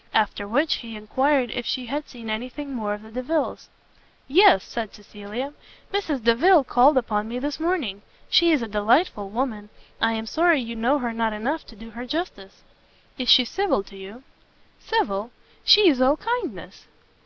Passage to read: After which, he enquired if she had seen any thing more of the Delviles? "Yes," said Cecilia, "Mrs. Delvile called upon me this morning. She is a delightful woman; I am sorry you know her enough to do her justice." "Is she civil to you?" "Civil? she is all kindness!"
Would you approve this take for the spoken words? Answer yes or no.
no